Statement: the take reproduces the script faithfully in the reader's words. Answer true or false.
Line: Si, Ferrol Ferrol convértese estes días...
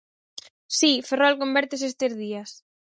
false